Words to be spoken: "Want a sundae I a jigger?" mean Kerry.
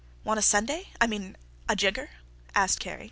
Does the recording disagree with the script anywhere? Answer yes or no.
yes